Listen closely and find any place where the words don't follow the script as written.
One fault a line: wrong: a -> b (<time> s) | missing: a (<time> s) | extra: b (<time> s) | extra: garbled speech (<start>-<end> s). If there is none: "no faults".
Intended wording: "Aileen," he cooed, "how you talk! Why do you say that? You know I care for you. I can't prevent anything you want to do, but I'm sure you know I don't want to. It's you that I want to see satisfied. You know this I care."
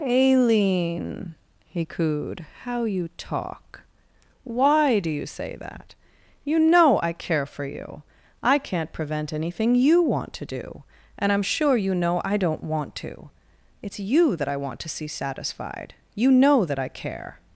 wrong: but -> and (11.2 s)
wrong: this -> that (16.6 s)